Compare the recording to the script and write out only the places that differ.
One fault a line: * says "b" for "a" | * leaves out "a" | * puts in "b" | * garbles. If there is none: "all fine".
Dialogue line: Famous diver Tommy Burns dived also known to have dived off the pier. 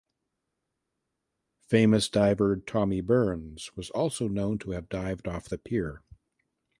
* says "was" for "dived"